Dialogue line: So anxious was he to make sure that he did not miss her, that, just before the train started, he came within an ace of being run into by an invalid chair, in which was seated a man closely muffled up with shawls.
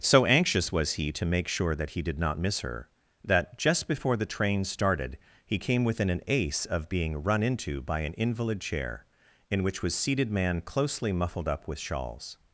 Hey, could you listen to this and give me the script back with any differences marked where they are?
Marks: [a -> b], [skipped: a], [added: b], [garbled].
So anxious was he to make sure that he did not miss her, that, just before the train started, he came within an ace of being run into by an invalid chair, in which was seated [skipped: a] man closely muffled up with shawls.